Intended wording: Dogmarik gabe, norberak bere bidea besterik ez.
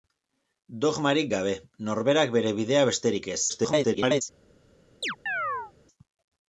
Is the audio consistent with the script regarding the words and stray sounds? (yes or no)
no